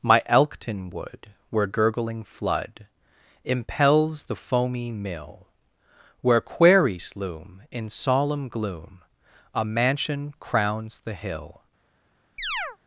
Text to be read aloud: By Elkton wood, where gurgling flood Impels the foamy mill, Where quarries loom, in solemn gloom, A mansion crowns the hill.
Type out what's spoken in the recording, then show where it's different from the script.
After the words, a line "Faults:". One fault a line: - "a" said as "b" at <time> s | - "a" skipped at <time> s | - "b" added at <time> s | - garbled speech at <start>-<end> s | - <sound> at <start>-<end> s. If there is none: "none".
My Elkton wood, where gurgling flood Impels the foamy mill, Where quarries loom, in solemn gloom, A mansion crowns the hill.
Faults:
- "By" said as "My" at 0.0 s
- chirp at 12.4-12.8 s